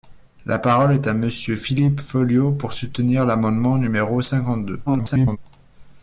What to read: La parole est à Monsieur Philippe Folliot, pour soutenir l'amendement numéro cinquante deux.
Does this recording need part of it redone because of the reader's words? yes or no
yes